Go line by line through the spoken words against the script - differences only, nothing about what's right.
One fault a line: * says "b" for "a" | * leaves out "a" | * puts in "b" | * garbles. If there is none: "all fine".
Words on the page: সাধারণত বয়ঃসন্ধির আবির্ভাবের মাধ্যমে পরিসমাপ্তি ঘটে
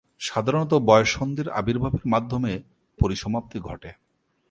all fine